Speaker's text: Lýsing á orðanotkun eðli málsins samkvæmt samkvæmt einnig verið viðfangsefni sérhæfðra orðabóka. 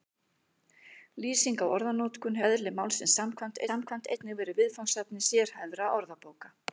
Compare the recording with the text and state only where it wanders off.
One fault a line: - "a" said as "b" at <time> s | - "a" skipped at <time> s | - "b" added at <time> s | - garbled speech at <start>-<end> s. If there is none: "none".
none